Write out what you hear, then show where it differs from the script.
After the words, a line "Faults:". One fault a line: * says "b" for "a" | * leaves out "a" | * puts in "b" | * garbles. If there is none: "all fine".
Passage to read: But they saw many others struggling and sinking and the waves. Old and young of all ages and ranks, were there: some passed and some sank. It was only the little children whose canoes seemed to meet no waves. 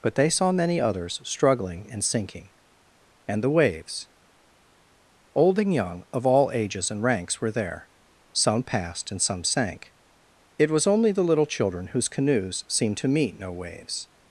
But they saw many others struggling and sinking and the waves. Old and young of all ages and ranks, were there: some passed and some sank. It was only the little children whose canoes seemed to meet no waves.
Faults:
all fine